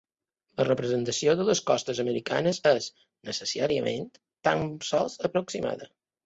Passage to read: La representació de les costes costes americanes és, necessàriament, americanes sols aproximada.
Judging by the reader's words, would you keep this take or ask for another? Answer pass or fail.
fail